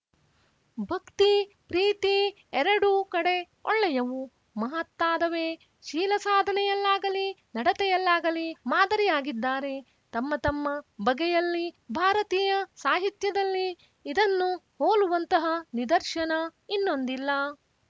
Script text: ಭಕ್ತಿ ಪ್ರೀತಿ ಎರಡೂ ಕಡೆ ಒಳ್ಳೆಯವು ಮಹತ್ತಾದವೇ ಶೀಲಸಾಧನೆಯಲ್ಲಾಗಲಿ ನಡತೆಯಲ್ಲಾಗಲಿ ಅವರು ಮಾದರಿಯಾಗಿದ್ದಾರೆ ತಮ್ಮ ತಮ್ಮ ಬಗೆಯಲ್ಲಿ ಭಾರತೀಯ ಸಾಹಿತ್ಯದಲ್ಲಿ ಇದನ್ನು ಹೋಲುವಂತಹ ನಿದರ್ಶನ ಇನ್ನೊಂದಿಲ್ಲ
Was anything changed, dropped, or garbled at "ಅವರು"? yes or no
yes